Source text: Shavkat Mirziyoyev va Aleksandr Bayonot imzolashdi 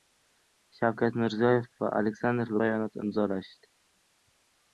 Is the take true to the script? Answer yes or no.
yes